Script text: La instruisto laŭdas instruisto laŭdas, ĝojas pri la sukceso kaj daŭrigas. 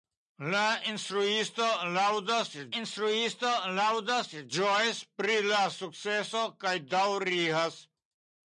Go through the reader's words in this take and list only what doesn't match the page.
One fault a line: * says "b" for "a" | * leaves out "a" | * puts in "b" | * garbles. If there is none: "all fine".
all fine